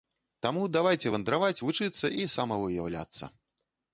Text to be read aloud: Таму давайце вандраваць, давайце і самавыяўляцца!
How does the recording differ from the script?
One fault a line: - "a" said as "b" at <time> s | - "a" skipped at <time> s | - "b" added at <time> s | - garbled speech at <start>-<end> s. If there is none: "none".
- "давайце" said as "вучыцца" at 1.6 s